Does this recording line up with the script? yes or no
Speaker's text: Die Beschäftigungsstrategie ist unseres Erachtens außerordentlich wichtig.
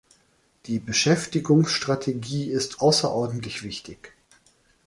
no